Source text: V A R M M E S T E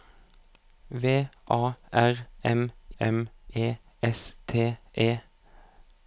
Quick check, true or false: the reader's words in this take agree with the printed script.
true